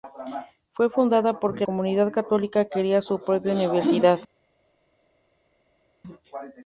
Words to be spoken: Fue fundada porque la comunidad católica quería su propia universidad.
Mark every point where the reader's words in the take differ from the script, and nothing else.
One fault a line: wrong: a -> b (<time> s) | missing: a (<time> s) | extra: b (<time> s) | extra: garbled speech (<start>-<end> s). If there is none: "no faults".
missing: la (1.7 s)